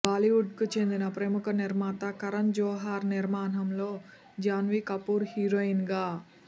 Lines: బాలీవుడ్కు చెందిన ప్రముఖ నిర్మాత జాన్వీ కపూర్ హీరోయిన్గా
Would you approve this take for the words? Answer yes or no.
no